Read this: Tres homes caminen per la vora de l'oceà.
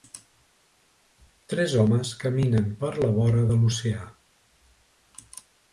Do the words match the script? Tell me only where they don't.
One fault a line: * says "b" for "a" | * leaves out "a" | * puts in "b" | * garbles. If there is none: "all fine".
all fine